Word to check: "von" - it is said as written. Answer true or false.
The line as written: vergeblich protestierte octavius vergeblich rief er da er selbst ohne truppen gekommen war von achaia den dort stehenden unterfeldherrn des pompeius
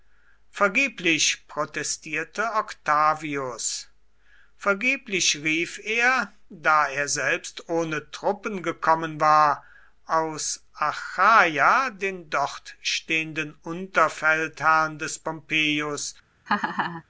false